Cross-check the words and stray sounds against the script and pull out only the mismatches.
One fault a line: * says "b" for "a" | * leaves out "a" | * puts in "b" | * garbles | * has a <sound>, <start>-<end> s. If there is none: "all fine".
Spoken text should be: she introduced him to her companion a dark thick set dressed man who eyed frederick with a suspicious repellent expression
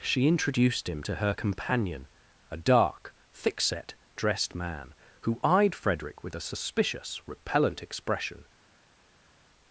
all fine